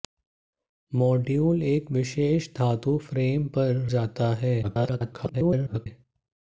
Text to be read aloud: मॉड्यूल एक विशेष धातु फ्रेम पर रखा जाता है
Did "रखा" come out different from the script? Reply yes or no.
yes